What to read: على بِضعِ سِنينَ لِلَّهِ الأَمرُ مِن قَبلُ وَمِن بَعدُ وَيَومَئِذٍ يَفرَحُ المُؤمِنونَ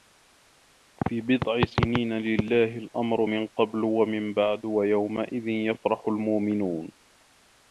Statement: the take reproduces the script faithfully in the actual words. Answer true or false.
false